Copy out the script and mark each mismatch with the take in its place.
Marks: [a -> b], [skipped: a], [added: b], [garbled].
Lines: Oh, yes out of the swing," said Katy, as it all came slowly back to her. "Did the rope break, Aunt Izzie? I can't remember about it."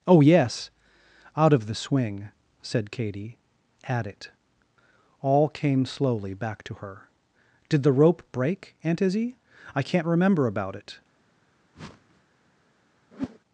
Oh, yes out of the swing," said Katy, [as -> at] it all came slowly back to her. "Did the rope break, Aunt Izzie? I can't remember about it."